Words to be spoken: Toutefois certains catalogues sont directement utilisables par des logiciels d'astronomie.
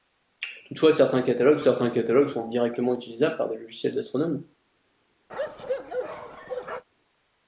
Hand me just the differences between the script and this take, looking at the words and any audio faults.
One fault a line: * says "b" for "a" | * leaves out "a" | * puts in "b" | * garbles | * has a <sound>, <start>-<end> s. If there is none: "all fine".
* puts in "certains catalogues"
* has a bark, 5.3-6.8 s